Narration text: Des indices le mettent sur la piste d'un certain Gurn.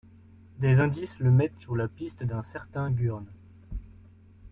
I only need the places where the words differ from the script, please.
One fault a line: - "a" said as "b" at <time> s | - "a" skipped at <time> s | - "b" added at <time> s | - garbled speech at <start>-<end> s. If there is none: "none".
none